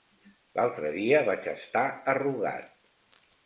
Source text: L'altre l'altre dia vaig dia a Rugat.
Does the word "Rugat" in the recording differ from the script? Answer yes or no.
no